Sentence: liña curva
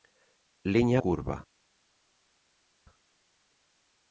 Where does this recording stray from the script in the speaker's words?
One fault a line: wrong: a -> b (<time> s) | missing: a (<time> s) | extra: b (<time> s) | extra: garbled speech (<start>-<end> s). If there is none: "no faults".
no faults